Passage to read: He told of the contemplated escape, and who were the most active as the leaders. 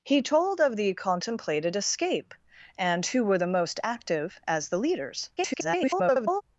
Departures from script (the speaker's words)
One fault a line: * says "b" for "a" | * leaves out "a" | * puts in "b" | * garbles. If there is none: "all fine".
* garbles